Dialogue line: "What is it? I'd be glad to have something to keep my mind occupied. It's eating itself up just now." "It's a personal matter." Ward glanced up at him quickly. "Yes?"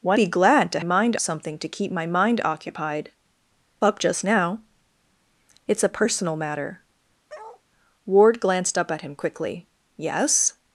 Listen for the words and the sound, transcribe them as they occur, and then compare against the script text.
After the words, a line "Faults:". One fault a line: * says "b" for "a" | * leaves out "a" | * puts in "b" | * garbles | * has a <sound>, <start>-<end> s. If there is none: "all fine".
"What be glad to mind something to keep my mind occupied. Up just now." "It's a personal matter." Ward glanced up at him quickly. "Yes?"
Faults:
* leaves out "is it I'd"
* says "mind" for "have"
* leaves out "It's eating itself"
* has a bark, 7.3-7.6 s